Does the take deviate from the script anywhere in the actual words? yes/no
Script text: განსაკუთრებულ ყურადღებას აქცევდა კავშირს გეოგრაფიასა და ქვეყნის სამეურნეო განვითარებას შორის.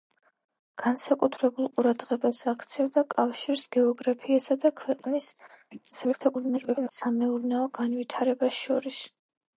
yes